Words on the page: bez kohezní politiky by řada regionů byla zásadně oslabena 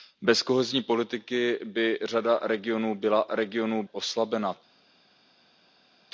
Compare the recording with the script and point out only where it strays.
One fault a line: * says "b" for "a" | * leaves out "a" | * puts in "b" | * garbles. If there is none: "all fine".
* says "regionů" for "zásadně"